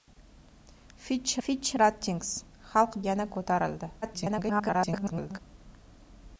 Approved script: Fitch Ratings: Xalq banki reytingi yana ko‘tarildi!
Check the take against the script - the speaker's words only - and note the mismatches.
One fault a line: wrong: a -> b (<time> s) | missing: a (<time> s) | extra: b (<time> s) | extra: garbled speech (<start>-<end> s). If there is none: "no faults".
extra: fitch (1.5 s)
missing: banki reytingi (3.0 s)
extra: garbled speech (4.0-5.4 s)